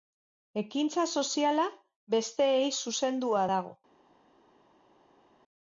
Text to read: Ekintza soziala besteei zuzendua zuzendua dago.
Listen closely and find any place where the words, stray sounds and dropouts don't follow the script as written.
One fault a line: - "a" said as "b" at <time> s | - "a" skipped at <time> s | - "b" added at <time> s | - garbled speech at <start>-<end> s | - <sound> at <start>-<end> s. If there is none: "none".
- "zuzendua" skipped at 3.5 s